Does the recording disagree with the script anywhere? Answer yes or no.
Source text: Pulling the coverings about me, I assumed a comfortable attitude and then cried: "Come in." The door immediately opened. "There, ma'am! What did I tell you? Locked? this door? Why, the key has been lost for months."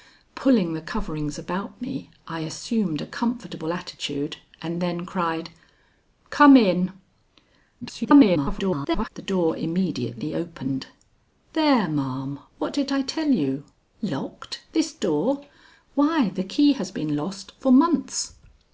yes